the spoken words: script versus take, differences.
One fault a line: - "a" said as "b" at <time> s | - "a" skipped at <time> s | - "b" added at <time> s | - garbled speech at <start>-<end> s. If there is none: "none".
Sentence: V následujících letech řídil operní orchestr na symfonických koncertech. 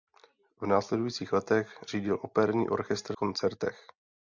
- "na symfonických" skipped at 3.2 s